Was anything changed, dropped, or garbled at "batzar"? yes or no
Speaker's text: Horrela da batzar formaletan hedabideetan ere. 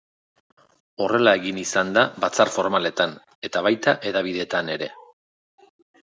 no